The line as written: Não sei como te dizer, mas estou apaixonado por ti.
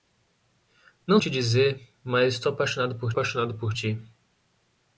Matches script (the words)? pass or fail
fail